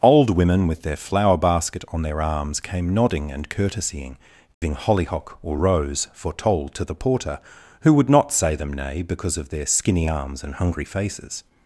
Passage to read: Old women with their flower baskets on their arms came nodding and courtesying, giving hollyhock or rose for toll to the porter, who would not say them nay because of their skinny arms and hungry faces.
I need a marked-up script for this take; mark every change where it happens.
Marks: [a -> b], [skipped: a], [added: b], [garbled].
Old women with their flower [baskets -> basket] on their arms came nodding and courtesying, giving hollyhock or rose for toll to the porter, who would not say them nay because of their skinny arms and hungry faces.